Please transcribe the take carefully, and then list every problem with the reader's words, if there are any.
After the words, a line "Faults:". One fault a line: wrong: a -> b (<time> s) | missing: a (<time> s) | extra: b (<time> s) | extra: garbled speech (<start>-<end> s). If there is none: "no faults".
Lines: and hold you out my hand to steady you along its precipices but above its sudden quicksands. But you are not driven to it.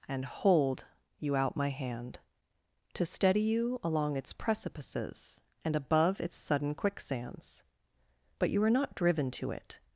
and hold you out my hand to steady you along its precipices and above its sudden quicksands. But you are not driven to it.
Faults:
wrong: but -> and (5.6 s)